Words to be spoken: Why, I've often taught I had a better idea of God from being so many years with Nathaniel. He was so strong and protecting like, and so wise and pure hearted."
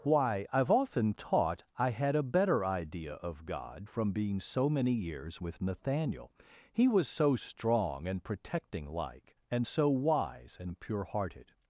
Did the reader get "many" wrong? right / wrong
right